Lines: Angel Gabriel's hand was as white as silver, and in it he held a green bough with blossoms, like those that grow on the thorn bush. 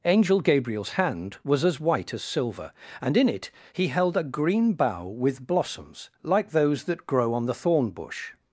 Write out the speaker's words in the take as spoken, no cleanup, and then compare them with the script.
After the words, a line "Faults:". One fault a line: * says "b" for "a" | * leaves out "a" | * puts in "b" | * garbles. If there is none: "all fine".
Angel Gabriel's hand was as white as silver, and in it he held a green bough with blossoms, like those that grow on the thorn bush.
Faults:
all fine